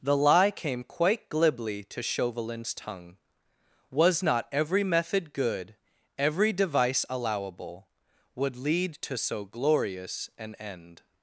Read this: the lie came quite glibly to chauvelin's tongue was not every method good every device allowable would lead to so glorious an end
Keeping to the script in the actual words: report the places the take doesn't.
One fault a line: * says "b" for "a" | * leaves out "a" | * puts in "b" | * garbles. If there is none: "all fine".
all fine